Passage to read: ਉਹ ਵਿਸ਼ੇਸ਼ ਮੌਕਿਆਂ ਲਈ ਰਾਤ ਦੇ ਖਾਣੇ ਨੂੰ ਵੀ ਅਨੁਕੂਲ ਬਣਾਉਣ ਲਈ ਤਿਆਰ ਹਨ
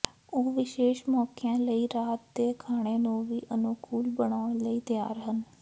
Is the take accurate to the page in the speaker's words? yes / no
yes